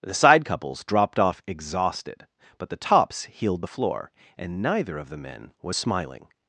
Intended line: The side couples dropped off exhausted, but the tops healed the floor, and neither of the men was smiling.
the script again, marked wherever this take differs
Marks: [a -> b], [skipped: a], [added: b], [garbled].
The side couples dropped off exhausted, but the tops healed the floor, and neither of the men was smiling.